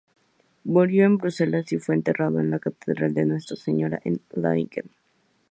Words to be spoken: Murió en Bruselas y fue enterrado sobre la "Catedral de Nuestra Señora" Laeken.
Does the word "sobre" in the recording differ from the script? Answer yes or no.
yes